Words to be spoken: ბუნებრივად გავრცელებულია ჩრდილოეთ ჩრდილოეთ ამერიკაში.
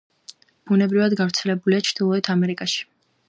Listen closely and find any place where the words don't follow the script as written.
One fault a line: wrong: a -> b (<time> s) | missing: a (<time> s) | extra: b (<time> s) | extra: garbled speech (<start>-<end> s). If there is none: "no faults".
missing: ჩრდილოეთ (2.3 s)